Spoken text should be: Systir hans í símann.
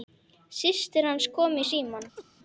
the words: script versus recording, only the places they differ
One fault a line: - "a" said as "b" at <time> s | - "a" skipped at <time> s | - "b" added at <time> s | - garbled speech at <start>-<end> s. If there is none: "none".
- "kom" added at 1.4 s